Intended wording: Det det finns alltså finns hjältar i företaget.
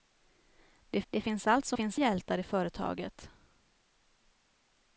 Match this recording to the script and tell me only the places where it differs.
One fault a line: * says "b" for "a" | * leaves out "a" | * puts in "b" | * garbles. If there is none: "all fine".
all fine